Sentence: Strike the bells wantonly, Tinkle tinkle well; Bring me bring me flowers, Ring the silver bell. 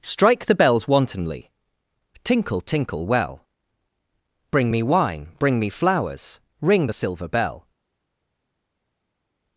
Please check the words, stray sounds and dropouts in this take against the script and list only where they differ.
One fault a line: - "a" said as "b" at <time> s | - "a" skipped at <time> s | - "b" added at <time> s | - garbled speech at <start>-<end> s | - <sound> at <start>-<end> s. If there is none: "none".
- "wine" added at 4.8 s